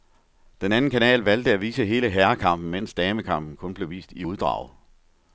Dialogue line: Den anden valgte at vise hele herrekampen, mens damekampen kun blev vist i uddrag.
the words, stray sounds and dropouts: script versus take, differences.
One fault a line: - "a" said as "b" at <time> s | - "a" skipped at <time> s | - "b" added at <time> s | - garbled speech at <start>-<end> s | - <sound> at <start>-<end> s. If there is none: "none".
- "kanal" added at 0.9 s